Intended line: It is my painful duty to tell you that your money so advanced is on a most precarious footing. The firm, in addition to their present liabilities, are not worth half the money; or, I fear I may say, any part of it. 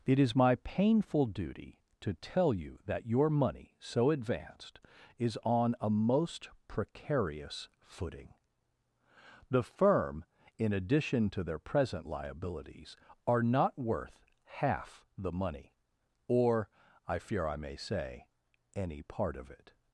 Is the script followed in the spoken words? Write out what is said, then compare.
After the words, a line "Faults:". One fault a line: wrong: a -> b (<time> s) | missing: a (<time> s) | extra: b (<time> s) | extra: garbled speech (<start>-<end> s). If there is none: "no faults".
It is my painful duty to tell you that your money so advanced is on a most precarious footing. The firm, in addition to their present liabilities, are not worth half the money; or, I fear I may say, any part of it.
Faults:
no faults